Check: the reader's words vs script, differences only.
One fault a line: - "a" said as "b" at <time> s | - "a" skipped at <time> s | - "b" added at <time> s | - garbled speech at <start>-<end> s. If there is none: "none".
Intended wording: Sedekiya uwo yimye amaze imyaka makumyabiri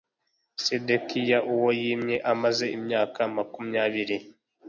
none